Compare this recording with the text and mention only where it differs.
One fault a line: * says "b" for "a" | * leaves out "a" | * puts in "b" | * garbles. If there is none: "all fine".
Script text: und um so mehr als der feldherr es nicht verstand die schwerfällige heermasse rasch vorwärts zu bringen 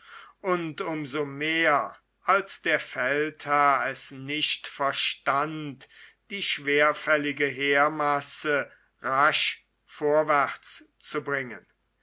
all fine